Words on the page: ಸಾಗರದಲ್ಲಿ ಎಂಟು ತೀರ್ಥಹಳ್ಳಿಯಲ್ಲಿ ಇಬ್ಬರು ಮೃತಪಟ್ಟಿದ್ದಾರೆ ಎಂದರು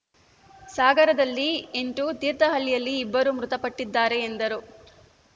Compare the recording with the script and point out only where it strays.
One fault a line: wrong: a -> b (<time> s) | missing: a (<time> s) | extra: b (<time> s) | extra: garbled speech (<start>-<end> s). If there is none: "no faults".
no faults